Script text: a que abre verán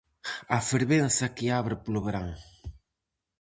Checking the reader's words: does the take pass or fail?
fail